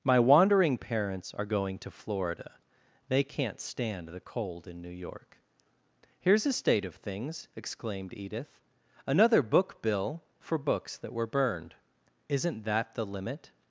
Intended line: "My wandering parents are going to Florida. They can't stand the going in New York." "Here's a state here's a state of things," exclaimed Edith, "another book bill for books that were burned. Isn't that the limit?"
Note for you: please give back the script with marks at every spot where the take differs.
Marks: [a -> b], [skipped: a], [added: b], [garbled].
"My wandering parents are going to Florida. They can't stand the [going -> cold] in New York." "Here's a state [skipped: here's a state] of things," exclaimed Edith, "another book bill for books that were burned. Isn't that the limit?"